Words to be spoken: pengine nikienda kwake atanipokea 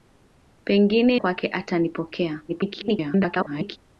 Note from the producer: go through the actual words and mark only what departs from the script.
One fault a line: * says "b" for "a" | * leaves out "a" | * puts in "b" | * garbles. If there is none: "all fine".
* leaves out "nikienda"
* garbles